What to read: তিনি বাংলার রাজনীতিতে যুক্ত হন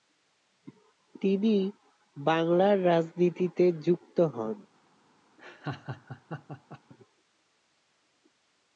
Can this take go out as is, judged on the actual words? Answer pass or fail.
pass